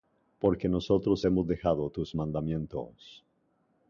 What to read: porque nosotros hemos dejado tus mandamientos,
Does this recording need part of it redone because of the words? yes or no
no